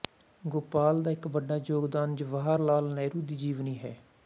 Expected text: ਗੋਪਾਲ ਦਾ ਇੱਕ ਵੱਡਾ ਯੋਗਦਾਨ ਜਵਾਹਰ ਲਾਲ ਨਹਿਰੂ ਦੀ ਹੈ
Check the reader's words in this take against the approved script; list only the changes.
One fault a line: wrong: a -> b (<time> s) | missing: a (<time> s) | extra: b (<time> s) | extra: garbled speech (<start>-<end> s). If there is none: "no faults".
extra: ਜੀਵਨੀ (3.4 s)